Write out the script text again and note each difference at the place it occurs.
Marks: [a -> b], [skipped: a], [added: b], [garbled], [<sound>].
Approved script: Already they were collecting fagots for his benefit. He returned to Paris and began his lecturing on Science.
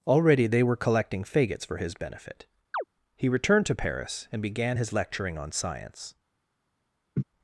Already they were collecting fagots for his benefit. [chirp] He returned to Paris and began his lecturing on Science. [laugh]